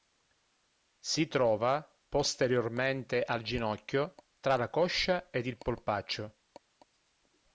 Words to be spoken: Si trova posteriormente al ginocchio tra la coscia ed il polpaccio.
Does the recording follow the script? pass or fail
pass